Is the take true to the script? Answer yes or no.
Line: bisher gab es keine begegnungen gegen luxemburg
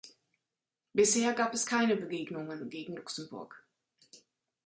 yes